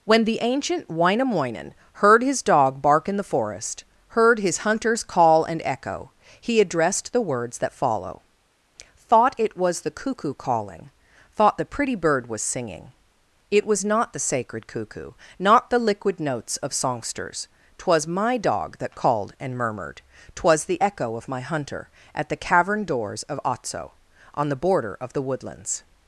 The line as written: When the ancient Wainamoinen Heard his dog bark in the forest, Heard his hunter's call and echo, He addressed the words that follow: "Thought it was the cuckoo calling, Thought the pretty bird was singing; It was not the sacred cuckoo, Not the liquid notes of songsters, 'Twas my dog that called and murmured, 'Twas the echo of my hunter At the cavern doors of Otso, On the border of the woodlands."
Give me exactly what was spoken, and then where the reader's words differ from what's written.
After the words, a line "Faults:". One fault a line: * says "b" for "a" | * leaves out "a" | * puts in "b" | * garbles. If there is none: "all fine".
When the ancient Wainamoinen Heard his dog bark in the forest, Heard his hunter's call and echo, He addressed the words that follow: "Thought it was the cuckoo calling, Thought the pretty bird was singing; It was not the sacred cuckoo, Not the liquid notes of songsters, 'Twas my dog that called and murmured, 'Twas the echo of my hunter At the cavern doors of Otso, On the border of the woodlands."
Faults:
all fine